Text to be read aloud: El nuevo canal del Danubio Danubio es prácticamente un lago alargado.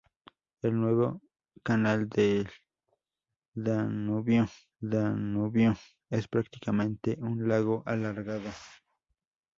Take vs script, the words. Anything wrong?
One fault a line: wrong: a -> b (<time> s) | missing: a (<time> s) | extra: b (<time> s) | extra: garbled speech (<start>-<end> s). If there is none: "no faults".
no faults